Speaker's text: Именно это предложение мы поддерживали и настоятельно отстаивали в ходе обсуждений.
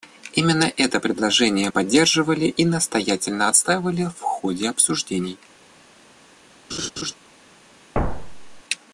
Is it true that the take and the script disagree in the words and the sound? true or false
true